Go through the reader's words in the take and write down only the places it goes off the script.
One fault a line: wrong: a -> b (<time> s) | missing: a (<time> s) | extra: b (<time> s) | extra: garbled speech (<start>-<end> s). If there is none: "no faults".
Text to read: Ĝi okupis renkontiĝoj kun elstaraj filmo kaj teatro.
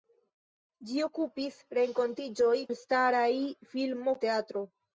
missing: kun (2.5 s)
missing: kaj (4.2 s)